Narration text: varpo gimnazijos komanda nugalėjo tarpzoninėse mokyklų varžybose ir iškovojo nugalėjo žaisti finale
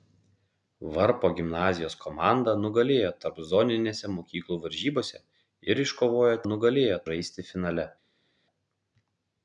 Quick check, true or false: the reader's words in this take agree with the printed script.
true